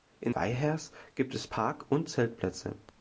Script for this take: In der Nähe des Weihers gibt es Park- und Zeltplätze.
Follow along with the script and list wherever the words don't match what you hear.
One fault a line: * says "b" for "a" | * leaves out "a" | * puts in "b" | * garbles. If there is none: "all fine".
* leaves out "der Nähe des"